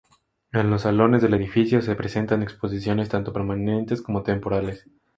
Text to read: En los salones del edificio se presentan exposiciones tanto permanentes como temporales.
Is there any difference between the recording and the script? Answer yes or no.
no